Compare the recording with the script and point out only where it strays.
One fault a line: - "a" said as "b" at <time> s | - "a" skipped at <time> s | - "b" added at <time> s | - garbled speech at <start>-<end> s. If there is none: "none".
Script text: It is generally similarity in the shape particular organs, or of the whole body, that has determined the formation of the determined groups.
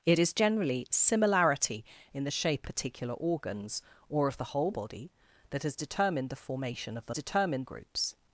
none